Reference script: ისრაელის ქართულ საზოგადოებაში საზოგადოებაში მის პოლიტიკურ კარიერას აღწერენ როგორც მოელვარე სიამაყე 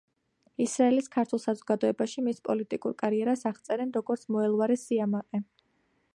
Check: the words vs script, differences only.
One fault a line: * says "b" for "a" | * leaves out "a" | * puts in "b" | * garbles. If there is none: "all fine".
* leaves out "საზოგადოებაში"